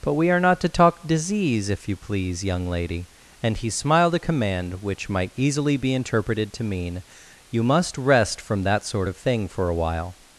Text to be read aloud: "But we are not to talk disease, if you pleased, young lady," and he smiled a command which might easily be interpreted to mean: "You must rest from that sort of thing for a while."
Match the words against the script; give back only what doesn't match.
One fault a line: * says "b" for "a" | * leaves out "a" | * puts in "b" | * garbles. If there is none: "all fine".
* says "please" for "pleased"